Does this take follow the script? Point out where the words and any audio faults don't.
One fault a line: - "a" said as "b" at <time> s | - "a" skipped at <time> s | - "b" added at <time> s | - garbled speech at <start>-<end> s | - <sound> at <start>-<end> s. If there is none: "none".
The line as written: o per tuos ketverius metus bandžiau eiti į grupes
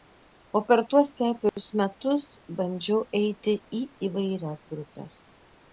- dropout at 1.5-1.6 s
- "įvairias" added at 4.1 s